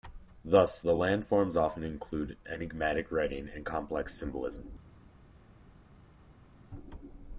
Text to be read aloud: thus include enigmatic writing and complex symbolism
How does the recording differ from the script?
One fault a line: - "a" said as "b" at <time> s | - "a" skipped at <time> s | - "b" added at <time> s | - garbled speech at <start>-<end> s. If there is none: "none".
- "the landforms often" added at 0.8 s